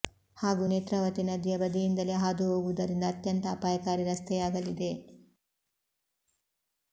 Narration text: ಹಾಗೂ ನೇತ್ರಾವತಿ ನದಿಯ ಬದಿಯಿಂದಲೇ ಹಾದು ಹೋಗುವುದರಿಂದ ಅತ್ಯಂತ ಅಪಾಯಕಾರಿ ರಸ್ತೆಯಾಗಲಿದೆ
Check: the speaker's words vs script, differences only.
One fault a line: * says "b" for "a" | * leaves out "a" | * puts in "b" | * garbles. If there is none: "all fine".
all fine